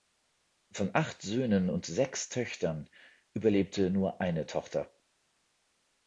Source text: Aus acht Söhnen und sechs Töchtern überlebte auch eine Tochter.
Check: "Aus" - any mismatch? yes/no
yes